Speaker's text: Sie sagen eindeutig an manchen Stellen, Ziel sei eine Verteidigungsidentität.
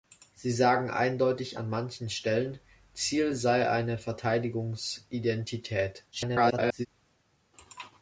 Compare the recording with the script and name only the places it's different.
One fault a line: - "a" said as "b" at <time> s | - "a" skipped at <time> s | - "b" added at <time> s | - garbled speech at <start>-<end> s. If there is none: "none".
- garbled speech at 6.1-6.9 s